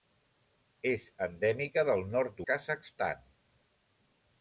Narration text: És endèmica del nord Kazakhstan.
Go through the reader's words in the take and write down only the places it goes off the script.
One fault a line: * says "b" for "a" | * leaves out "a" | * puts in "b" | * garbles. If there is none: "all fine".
all fine